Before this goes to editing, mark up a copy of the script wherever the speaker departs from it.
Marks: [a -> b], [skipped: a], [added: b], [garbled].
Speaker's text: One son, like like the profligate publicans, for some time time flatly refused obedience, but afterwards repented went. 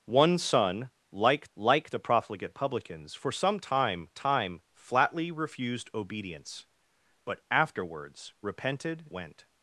One son, like like the profligate publicans, for some time time flatly refused obedience, but afterwards repented went.